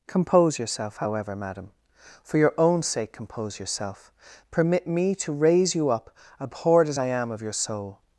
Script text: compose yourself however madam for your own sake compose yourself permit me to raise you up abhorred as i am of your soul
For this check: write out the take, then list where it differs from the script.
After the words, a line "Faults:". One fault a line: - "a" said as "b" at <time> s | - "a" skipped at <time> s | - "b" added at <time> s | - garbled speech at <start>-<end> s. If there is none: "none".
compose yourself however madam for your own sake compose yourself permit me to raise you up abhorred as i am of your soul
Faults:
none